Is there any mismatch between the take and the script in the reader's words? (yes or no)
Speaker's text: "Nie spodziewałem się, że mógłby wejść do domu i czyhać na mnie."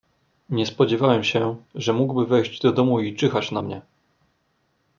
no